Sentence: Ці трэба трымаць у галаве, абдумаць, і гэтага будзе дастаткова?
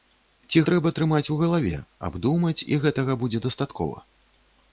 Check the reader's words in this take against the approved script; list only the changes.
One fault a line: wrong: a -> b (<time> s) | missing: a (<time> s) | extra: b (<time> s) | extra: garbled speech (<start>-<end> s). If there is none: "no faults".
no faults